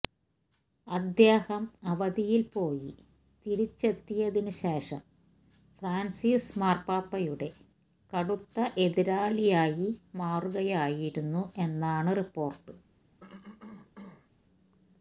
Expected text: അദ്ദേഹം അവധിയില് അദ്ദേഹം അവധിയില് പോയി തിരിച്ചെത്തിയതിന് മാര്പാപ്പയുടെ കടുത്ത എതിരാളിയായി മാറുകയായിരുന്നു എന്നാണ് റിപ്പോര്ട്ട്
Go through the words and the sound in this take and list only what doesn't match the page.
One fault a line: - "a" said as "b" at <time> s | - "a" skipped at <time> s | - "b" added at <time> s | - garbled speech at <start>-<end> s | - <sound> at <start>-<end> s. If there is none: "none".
- "അദ്ദേഹം അവധിയില് പോയി തിരിച്ചെത്തിയതിന്" said as "പോയി തിരിച്ചെത്തിയതിന് ശേഷം ഫ്രാന്സിസ്" at 2.5 s
- cough at 13.2-14.3 s